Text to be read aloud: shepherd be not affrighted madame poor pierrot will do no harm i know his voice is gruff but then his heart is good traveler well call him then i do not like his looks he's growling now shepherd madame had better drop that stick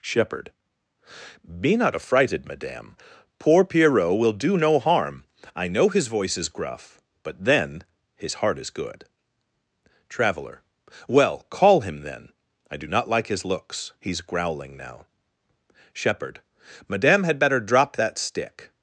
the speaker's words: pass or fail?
pass